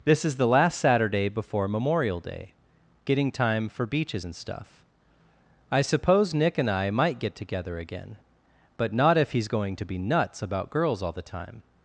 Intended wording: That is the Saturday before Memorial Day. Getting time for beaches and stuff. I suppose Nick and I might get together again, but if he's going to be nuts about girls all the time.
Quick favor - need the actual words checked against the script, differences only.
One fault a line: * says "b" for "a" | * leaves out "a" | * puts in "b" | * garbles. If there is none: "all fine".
* says "This" for "That"
* puts in "last"
* puts in "not"